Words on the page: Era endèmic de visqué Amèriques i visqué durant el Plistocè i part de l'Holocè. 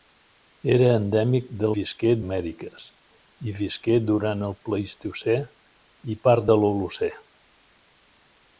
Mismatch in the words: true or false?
false